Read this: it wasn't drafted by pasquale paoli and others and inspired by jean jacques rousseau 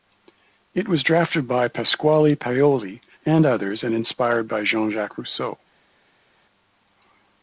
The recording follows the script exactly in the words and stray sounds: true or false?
false